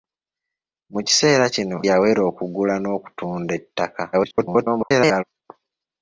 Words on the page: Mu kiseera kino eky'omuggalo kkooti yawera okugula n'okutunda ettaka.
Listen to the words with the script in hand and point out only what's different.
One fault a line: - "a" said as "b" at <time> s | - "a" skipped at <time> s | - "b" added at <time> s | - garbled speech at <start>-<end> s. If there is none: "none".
- "eky'omuggalo kkooti" skipped at 1.8 s
- garbled speech at 4.1-5.2 s